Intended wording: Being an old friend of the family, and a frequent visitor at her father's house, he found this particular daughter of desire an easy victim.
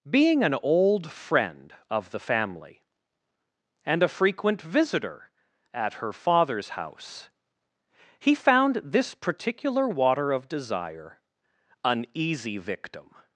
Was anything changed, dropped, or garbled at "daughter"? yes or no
yes